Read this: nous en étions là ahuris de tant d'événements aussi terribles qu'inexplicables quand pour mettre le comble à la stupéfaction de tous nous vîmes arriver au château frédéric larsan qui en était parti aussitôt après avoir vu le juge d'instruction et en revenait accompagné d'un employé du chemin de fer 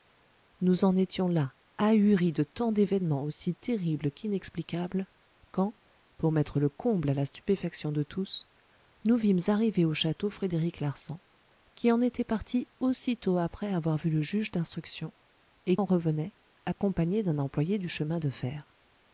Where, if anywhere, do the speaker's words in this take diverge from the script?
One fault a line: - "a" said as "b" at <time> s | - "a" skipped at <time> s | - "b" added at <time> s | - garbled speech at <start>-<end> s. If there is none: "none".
none